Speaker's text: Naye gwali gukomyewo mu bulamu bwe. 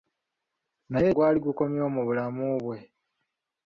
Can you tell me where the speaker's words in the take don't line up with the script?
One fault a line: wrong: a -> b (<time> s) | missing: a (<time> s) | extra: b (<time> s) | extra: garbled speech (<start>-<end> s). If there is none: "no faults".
no faults